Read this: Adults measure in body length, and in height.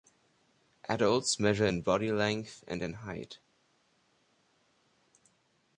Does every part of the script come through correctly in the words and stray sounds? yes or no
yes